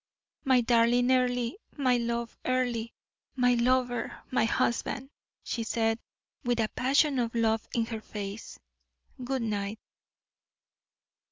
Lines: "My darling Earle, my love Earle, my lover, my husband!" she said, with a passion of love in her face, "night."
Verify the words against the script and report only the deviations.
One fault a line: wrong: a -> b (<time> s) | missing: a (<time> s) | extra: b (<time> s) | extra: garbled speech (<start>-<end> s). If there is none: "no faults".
extra: good (9.2 s)